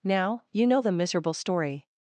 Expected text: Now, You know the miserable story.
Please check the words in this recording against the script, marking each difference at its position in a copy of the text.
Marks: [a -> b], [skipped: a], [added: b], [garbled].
Now, You know the miserable story.